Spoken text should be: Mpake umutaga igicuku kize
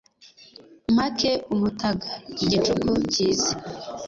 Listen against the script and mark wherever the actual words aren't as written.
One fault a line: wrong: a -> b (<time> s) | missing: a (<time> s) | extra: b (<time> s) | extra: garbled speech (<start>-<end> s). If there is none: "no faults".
no faults